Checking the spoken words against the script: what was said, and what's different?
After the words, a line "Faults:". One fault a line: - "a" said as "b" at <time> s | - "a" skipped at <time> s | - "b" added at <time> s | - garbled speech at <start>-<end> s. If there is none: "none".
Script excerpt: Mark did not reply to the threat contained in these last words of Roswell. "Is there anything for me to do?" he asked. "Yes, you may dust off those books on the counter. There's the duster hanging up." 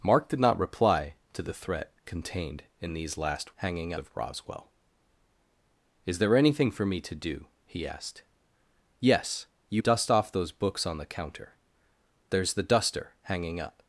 Mark did not reply to the threat contained in these last hanging of Roswell. "Is there anything for me to do?" he asked. "Yes, you dust off those books on the counter. There's the duster hanging up."
Faults:
- "words" said as "hanging" at 3.6 s
- "may" skipped at 9.8 s